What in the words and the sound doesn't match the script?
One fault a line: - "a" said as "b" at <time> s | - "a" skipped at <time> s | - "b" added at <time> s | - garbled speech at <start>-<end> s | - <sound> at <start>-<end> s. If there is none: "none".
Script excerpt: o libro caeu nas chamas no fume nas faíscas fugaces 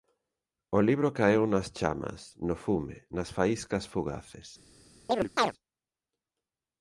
- chirp at 5.1-5.5 s